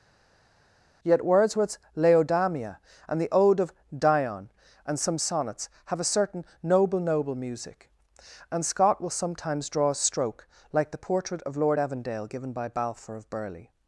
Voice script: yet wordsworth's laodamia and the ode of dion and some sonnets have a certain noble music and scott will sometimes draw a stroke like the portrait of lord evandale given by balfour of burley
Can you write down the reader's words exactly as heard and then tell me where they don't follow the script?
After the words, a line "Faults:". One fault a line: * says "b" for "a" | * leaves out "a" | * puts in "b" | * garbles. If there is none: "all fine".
yet wordsworth's laodamia and the ode of dion and some sonnets have a certain noble noble music and scott will sometimes draw a stroke like the portrait of lord evandale given by balfour of burley
Faults:
* puts in "noble"